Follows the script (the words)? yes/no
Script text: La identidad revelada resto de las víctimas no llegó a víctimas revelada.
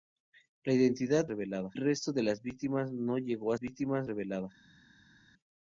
yes